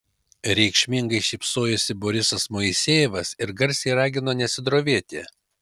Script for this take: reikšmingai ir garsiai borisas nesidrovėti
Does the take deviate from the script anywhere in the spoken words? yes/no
yes